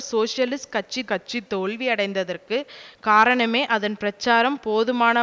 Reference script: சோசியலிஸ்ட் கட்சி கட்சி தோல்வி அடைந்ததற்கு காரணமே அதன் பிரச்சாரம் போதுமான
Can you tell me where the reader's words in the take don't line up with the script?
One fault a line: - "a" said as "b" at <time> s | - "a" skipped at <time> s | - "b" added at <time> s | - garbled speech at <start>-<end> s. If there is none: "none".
none